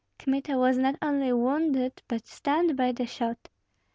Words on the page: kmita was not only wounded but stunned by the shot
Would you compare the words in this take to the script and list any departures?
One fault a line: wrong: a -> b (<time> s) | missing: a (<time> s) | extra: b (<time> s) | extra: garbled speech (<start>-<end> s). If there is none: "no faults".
no faults